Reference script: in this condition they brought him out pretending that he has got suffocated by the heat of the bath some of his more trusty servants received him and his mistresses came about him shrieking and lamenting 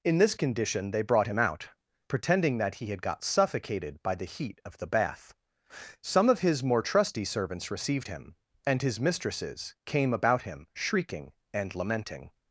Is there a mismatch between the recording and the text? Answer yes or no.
yes